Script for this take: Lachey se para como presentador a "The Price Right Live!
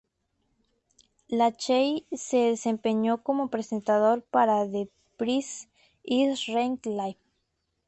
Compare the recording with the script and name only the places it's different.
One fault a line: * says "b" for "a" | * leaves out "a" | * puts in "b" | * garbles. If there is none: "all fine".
* says "desempeñó" for "para"
* says "para" for "a"
* puts in "Is"